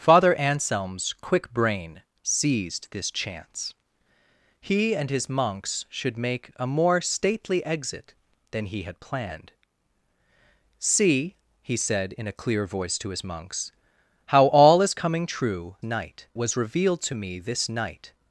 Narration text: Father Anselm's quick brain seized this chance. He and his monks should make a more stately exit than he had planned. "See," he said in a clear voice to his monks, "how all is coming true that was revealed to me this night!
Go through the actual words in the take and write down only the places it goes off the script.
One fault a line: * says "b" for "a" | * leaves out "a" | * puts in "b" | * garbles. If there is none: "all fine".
* says "night" for "that"